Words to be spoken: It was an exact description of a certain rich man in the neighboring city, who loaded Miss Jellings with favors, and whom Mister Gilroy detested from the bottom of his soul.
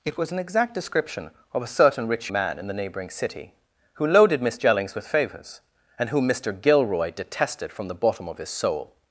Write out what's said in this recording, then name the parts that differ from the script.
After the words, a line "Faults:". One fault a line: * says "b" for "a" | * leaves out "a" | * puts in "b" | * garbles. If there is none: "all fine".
It was an exact description of a certain rich man in the neighboring city, who loaded Miss Jellings with favors, and whom Mister Gilroy detested from the bottom of his soul.
Faults:
all fine